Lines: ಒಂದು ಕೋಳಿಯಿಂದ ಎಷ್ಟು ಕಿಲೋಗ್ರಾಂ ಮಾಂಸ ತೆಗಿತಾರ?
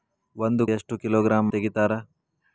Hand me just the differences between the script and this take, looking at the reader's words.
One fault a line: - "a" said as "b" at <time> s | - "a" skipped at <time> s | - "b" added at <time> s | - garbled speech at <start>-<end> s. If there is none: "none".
- "ಕೋಳಿಯಿಂದ" skipped at 0.6 s
- "ಮಾಂಸ" skipped at 1.5 s